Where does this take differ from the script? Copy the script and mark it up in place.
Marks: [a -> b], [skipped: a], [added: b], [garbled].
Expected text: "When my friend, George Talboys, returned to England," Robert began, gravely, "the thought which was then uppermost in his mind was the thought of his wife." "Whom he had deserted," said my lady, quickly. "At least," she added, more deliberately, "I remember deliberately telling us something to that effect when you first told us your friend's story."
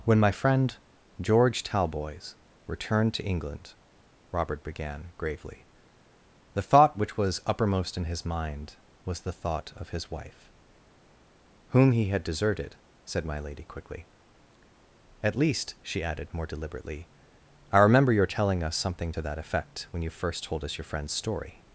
"When my friend, George Talboys, returned to England," Robert began, gravely, "the thought which was [skipped: then] uppermost in his mind was the thought of his wife." "Whom he had deserted," said my lady, quickly. "At least," she added, more deliberately, "I remember [deliberately -> your] telling us something to that effect when you first told us your friend's story."